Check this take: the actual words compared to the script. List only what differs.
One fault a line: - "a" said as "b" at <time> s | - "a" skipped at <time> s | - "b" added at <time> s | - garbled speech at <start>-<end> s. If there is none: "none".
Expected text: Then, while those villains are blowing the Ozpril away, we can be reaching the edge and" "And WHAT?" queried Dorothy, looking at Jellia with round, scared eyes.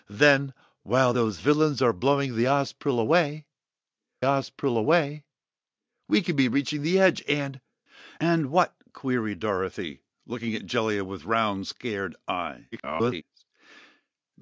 - "Ozpril away" added at 4.2 s
- garbled speech at 12.7-13.2 s